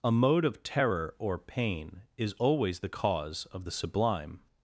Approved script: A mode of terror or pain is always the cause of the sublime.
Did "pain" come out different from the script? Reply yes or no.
no